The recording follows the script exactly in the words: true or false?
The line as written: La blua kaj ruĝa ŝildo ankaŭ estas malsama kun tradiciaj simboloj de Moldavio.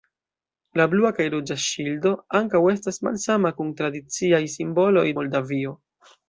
false